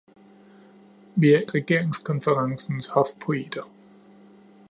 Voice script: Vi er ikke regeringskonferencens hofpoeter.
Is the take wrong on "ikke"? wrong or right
wrong